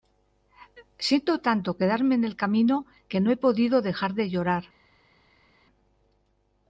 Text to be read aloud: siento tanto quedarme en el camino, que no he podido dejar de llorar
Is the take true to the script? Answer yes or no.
yes